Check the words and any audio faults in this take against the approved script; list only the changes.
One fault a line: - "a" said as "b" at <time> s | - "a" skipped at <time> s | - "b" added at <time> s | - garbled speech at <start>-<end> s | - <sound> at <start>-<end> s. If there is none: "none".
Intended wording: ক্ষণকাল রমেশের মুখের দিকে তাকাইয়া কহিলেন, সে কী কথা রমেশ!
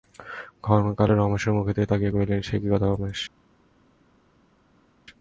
none